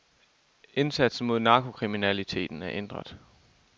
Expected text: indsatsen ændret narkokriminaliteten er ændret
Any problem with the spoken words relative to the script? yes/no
yes